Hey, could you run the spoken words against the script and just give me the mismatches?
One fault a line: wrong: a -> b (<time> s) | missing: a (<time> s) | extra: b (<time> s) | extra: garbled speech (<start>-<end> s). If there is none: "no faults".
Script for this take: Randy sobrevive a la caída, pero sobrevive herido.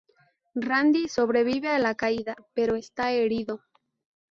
wrong: sobrevive -> está (2.8 s)